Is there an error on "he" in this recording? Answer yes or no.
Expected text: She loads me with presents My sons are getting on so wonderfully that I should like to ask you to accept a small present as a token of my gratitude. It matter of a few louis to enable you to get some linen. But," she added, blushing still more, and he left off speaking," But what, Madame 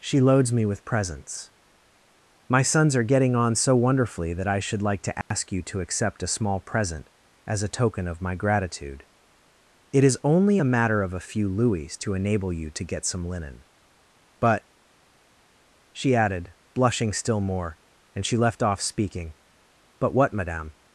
yes